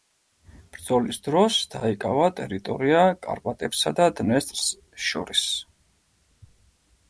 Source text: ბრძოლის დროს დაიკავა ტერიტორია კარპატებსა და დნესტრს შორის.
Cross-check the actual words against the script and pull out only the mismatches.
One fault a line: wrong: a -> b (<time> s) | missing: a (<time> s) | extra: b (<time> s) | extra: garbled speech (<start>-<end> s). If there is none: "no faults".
no faults